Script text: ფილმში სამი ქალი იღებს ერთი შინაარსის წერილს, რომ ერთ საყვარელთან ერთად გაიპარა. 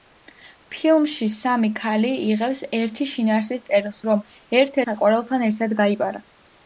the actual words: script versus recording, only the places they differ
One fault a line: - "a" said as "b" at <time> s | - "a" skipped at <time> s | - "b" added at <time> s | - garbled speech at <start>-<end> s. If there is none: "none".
none